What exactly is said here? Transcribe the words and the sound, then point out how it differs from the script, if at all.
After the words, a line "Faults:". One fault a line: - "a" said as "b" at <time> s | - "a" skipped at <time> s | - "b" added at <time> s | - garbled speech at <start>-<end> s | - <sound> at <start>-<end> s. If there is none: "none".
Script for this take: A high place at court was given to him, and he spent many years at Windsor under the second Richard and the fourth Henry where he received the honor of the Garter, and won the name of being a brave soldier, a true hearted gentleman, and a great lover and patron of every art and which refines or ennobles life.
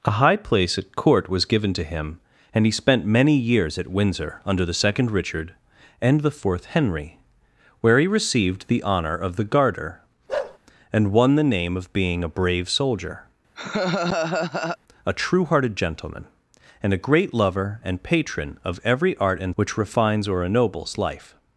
A high place at court was given to him, and he spent many years at Windsor under the second Richard and the fourth Henry where he received the honor of the Garter, and won the name of being a brave soldier, a true hearted gentleman, and a great lover and patron of every art and which refines or ennobles life.
Faults:
- bark at 10.3-10.6 s
- laugh at 13.6-14.8 s